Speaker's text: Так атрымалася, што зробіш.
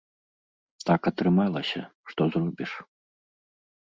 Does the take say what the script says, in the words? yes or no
yes